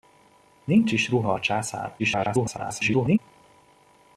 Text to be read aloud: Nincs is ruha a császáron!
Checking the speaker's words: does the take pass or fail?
fail